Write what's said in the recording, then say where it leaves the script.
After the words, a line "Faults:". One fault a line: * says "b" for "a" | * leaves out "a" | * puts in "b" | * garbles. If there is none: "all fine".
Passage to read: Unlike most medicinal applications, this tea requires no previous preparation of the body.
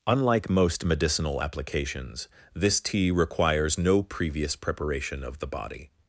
Unlike most medicinal applications, this tea requires no previous preparation of the body.
Faults:
all fine